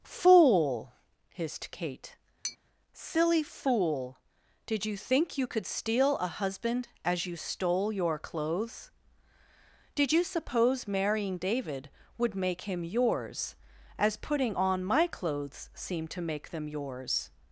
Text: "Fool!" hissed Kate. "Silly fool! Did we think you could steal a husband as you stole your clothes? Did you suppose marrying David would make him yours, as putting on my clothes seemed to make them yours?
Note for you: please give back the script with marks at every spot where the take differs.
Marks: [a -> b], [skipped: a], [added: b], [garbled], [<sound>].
"Fool!" hissed Kate. [tap] "Silly fool! Did [we -> you] think you could steal a husband as you stole your clothes? Did you suppose marrying David would make him yours, as putting on my clothes seemed to make them yours?